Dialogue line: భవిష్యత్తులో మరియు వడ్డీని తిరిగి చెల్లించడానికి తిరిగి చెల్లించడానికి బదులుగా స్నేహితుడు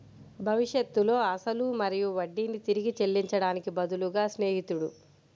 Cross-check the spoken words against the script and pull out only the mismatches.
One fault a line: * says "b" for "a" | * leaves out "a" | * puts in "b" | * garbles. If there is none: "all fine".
* puts in "అసలు"
* leaves out "తిరిగి చెల్లించడానికి"